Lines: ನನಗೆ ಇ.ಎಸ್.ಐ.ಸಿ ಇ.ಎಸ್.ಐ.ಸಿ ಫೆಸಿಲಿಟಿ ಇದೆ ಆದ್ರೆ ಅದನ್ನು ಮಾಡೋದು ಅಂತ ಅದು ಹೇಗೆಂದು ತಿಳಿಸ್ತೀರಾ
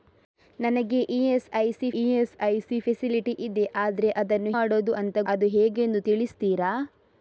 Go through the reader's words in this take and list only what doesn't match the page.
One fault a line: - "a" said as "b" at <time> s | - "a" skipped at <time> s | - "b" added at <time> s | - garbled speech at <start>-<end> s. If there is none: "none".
none